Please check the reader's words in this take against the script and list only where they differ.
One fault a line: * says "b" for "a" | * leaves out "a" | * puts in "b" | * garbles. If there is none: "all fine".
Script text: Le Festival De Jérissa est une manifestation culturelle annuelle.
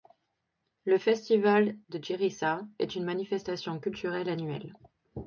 all fine